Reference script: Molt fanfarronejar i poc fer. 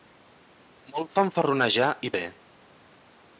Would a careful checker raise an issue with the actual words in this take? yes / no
yes